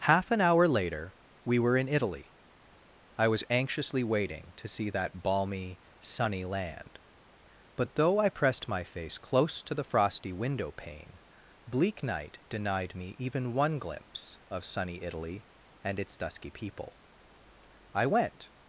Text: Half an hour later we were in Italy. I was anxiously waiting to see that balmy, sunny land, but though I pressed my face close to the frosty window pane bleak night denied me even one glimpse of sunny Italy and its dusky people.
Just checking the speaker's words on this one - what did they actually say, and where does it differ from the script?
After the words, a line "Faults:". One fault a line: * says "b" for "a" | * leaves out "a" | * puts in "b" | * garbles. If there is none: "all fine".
Half an hour later we were in Italy. I was anxiously waiting to see that balmy, sunny land, but though I pressed my face close to the frosty window pane bleak night denied me even one glimpse of sunny Italy and its dusky people. I went
Faults:
* puts in "I went"